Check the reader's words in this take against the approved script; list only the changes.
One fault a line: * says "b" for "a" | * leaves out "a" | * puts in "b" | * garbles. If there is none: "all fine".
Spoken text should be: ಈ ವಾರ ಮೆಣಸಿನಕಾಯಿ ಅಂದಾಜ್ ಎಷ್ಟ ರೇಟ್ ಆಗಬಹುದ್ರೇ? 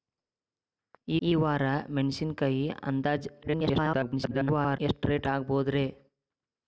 * puts in "ಈ"
* garbles